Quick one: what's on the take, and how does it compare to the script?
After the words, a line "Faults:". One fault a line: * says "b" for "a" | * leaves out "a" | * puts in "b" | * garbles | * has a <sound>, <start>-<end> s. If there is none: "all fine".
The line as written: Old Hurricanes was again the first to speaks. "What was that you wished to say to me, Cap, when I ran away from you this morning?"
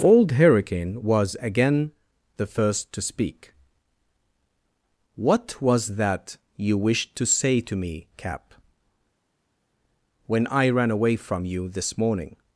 Old Hurricane was again the first to speak. "What was that you wished to say to me, Cap, when I ran away from you this morning?"
Faults:
* says "Hurricane" for "Hurricanes"
* says "speak" for "speaks"